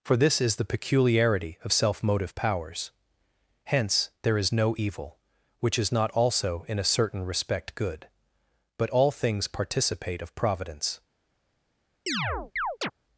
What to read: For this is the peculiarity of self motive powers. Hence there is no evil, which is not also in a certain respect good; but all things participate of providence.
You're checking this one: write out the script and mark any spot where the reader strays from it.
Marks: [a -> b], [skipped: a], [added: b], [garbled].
For this is the peculiarity of self motive powers. Hence there is no evil, which is not also in a certain respect good; but all things participate of providence.